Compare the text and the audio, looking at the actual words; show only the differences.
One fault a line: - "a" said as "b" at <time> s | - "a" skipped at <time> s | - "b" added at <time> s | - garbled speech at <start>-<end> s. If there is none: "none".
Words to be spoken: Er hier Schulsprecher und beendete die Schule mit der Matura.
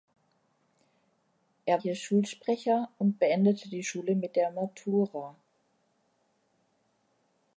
none